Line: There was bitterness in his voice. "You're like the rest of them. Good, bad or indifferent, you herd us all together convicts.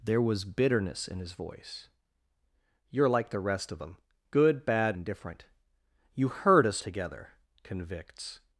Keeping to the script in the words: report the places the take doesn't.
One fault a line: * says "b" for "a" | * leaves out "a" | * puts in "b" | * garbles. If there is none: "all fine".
* leaves out "or"
* leaves out "all"